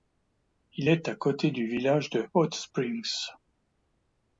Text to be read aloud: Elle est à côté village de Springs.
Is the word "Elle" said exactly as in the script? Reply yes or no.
no